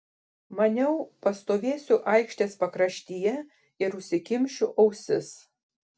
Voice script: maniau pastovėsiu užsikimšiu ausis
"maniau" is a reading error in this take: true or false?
false